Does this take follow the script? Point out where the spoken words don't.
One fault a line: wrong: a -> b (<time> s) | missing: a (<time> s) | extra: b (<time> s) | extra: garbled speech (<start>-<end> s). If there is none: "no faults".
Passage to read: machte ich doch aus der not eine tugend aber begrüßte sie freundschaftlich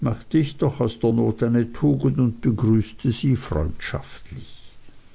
wrong: aber -> und (2.2 s)